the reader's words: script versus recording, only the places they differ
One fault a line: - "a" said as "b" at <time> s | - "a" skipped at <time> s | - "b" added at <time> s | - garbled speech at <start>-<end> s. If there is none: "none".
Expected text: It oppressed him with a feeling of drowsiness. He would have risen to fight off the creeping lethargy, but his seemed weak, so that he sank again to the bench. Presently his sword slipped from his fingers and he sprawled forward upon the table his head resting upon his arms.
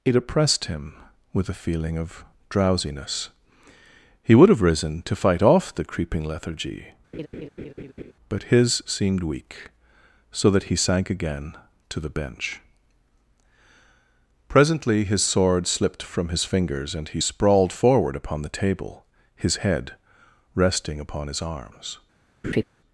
none